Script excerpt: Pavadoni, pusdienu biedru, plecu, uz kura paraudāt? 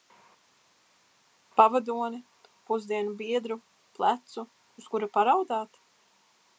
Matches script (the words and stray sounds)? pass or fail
pass